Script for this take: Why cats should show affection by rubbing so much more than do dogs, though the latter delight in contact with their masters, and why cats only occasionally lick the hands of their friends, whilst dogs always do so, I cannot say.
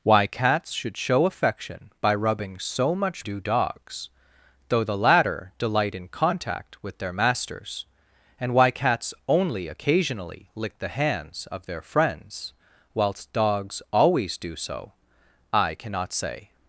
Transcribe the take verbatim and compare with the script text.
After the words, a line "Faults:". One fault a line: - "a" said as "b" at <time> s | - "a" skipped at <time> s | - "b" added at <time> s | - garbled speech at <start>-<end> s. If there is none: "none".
Why cats should show affection by rubbing so much do dogs, though the latter delight in contact with their masters, and why cats only occasionally lick the hands of their friends, whilst dogs always do so, I cannot say.
Faults:
- "more than" skipped at 3.3 s